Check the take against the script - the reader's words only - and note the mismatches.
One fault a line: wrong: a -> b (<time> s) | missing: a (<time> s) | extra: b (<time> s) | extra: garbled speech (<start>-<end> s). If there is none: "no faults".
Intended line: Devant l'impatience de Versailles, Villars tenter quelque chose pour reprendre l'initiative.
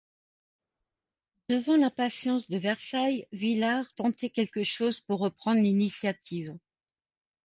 no faults